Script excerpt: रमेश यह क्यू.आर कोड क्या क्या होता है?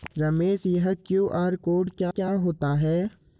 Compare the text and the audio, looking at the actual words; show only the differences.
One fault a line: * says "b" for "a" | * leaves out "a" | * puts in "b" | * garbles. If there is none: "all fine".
all fine